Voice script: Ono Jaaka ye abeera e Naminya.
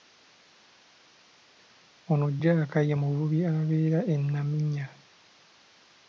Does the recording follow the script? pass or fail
fail